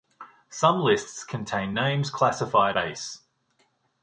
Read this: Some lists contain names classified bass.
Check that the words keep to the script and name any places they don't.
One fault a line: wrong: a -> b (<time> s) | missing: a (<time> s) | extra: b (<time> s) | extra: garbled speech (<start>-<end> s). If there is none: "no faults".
no faults